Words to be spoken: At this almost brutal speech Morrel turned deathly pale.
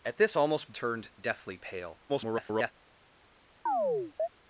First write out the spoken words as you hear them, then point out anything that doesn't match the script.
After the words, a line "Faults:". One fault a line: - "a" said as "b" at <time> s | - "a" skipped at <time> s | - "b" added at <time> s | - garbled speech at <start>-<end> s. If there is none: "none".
At this almost turned deathly pale. [garbled]
Faults:
- "brutal speech Morrel" skipped at 0.7 s
- garbled speech at 2.1-2.7 s